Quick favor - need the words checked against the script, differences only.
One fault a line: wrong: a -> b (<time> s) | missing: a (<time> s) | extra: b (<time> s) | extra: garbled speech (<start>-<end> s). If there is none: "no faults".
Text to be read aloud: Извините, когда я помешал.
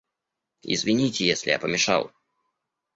wrong: когда -> если (1.3 s)